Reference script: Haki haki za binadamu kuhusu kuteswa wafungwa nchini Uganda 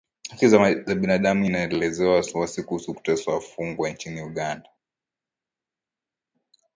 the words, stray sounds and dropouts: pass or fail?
fail